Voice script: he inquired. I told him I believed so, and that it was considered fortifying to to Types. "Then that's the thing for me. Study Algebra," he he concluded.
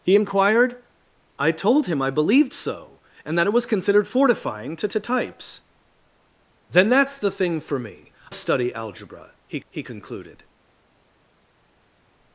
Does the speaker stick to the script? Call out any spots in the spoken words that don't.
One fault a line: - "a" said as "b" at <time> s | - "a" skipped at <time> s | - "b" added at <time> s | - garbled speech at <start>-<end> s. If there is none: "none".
none